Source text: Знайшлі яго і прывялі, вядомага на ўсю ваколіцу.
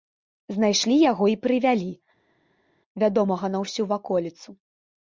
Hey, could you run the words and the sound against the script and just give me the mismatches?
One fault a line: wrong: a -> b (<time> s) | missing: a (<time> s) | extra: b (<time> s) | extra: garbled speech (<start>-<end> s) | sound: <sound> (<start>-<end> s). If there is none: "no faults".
no faults